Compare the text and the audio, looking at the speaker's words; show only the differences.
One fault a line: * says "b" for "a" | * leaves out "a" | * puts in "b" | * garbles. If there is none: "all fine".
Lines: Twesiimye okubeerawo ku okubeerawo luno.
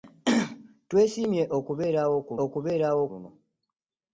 all fine